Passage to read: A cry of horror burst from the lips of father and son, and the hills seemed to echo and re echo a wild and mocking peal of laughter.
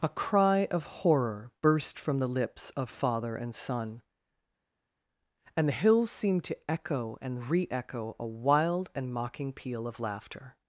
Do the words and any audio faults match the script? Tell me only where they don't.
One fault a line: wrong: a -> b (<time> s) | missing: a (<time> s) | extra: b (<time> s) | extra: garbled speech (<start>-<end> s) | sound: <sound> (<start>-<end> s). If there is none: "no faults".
no faults